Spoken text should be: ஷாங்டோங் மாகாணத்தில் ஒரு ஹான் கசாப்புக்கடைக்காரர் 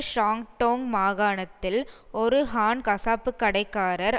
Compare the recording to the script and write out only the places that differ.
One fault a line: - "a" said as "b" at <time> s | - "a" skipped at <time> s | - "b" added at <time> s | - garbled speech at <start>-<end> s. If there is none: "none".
none